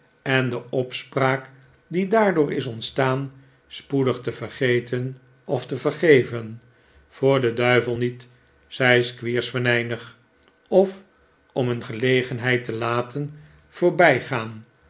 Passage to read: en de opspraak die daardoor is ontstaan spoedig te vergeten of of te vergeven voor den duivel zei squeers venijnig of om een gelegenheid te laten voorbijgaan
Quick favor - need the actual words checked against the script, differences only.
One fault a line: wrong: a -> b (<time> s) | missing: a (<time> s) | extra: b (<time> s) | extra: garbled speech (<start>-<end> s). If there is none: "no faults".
missing: of (5.6 s)
extra: niet (7.9 s)